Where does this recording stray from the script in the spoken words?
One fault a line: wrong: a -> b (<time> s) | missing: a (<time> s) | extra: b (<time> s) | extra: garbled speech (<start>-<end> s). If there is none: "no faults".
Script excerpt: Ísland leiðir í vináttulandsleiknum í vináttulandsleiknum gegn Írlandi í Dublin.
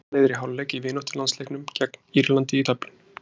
wrong: vináttulandsleiknum -> hálfleik (0.4 s)